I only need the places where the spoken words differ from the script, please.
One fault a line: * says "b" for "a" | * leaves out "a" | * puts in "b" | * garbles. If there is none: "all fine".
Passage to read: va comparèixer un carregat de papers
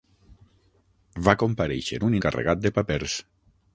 all fine